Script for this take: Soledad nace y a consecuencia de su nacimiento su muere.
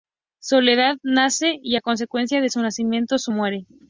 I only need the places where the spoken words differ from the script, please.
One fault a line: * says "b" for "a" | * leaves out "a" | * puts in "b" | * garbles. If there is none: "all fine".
all fine